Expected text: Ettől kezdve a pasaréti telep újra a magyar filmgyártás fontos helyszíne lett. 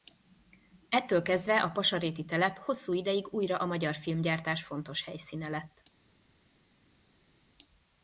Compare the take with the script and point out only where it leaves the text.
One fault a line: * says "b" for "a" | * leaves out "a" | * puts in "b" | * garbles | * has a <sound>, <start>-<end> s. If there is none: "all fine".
* puts in "hosszú ideig"